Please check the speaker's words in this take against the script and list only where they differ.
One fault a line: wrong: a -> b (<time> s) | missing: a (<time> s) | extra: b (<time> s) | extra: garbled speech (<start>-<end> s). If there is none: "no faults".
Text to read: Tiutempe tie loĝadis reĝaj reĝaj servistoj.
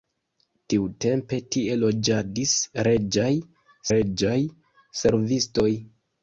no faults